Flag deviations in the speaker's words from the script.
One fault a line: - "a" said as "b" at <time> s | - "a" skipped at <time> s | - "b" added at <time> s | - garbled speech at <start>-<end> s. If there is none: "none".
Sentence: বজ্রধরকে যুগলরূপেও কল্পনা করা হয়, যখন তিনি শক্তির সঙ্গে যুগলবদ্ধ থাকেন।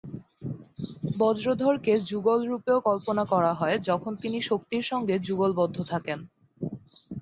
none